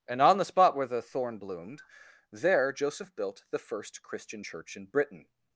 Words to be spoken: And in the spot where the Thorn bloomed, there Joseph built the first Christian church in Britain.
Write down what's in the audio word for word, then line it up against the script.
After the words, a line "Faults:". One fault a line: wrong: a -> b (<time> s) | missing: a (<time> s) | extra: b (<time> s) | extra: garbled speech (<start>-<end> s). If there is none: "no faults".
And on the spot where the Thorn bloomed, there Joseph built the first Christian church in Britain.
Faults:
wrong: in -> on (0.2 s)